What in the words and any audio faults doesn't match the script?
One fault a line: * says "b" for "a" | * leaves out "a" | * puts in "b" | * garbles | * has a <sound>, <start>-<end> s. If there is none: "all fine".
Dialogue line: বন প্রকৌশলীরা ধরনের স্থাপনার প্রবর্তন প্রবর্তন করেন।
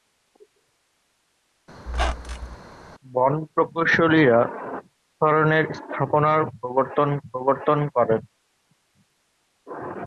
* has a squeak, 1.9-2.6 s